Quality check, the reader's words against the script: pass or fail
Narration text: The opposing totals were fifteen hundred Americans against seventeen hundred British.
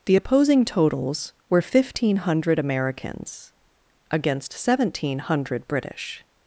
pass